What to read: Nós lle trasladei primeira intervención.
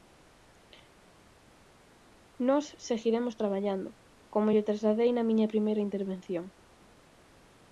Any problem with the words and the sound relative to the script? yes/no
yes